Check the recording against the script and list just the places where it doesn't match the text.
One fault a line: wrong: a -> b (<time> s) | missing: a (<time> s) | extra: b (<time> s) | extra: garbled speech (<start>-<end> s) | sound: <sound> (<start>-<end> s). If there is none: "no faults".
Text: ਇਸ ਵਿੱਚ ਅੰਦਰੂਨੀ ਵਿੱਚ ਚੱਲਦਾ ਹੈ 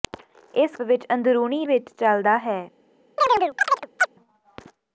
sound: chirp (3.2-4.1 s)